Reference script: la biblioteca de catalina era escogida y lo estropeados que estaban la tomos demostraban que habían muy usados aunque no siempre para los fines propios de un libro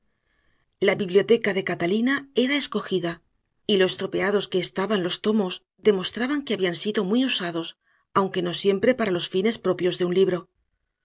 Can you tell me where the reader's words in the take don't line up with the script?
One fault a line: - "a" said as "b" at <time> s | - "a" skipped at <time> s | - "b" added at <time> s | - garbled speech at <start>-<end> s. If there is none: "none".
- "la" said as "los" at 5.0 s
- "sido" added at 6.8 s